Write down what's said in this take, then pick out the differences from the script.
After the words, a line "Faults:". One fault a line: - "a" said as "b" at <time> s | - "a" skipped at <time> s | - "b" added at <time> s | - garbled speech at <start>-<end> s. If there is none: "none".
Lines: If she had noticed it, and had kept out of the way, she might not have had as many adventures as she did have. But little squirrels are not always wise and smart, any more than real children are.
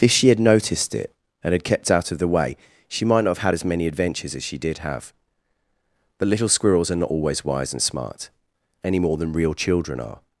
If she had noticed it, and had kept out of the way, she might not have had as many adventures as she did have. But little squirrels are not always wise and smart, any more than real children are.
Faults:
none